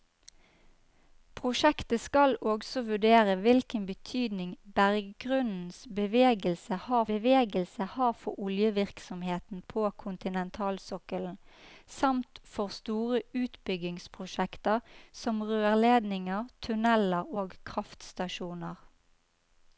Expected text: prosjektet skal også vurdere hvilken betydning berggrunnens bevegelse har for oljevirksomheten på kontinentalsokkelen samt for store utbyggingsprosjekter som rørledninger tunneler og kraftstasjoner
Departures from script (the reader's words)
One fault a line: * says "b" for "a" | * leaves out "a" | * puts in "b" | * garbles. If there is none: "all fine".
* puts in "bevegelse har"